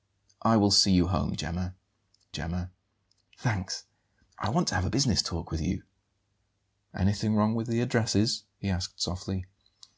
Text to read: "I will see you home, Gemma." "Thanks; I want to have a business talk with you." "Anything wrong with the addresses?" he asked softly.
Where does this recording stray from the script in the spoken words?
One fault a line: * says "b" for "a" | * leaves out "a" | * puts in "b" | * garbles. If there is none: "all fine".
* puts in "Gemma"